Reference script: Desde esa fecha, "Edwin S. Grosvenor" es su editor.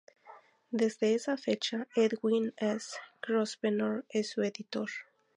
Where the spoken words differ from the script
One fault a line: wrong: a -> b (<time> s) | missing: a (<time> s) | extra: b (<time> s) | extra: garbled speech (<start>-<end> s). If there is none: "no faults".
no faults